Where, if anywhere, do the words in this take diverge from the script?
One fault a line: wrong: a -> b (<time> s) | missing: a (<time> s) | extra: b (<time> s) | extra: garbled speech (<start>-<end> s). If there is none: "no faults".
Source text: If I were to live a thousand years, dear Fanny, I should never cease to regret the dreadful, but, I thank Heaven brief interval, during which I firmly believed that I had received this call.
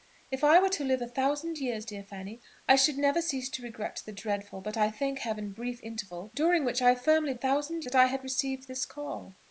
wrong: believed -> thousand (7.3 s)